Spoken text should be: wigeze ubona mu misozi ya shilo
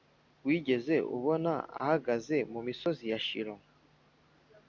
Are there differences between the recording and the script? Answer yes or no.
yes